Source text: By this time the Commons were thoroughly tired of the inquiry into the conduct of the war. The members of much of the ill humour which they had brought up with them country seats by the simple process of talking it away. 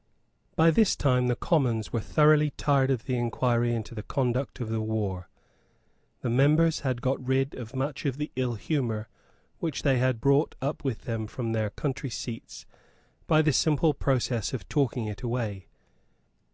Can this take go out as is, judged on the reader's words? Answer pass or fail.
fail